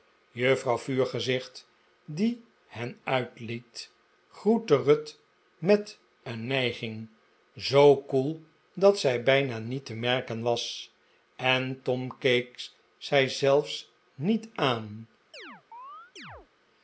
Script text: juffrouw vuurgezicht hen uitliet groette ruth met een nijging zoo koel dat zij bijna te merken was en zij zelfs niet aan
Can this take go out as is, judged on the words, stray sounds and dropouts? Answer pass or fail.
fail